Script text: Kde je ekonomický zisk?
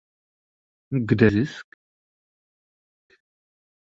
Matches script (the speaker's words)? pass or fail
fail